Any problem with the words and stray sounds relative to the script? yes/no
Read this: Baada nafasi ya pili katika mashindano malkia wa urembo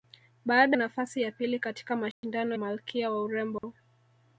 yes